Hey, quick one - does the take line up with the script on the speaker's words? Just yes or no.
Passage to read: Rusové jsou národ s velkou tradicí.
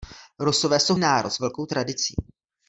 yes